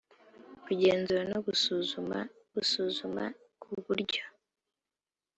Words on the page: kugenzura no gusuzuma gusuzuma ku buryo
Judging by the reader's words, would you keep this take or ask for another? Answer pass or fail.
pass